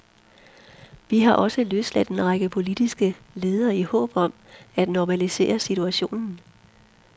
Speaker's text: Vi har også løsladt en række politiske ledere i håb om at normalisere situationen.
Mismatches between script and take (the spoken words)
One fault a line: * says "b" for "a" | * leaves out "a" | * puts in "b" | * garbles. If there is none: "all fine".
all fine